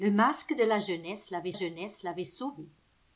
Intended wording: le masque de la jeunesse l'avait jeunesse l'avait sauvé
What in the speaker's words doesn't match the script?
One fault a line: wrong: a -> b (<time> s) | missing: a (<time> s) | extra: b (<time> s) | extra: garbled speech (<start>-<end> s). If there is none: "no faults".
no faults